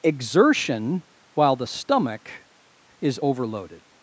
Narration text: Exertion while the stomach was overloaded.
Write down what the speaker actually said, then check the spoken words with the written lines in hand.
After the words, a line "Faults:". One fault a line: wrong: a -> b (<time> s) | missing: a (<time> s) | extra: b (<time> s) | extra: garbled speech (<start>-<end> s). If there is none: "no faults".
Exertion while the stomach is overloaded.
Faults:
wrong: was -> is (3.0 s)